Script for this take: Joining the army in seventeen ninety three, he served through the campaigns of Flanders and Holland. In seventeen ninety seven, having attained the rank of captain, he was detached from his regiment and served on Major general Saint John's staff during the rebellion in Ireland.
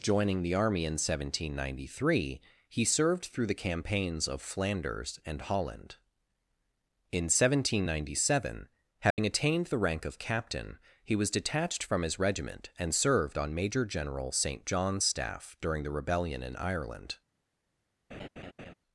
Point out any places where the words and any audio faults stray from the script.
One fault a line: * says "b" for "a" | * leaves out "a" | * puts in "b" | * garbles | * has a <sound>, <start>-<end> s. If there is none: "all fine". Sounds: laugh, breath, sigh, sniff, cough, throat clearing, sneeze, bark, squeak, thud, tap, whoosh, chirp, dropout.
* has a dropout, 9.1-9.2 s
* has a laugh, 18.1-18.7 s